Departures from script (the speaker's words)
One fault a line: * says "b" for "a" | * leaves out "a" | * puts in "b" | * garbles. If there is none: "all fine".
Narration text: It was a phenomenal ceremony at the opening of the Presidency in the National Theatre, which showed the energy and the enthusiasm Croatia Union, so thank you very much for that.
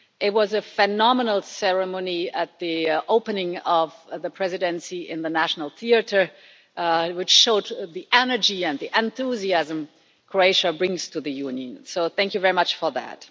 * puts in "brings to the"